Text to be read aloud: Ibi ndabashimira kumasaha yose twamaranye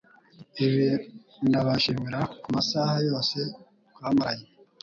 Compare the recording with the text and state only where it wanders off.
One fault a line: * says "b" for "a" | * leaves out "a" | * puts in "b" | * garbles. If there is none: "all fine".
all fine